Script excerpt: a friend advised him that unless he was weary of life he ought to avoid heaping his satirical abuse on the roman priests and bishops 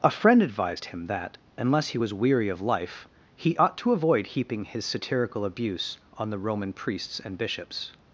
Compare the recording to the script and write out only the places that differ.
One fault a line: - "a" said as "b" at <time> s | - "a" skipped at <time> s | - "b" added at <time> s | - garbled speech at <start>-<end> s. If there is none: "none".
none